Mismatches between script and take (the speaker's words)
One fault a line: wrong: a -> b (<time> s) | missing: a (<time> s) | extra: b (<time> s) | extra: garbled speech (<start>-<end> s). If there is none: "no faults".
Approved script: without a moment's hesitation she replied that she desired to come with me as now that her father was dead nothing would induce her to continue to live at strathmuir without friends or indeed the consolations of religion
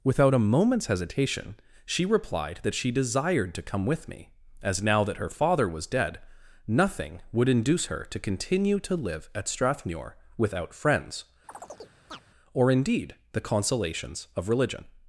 no faults